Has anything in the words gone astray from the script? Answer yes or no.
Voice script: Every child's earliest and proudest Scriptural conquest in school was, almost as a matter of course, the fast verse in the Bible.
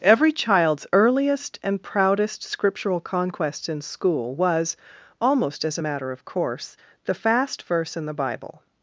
no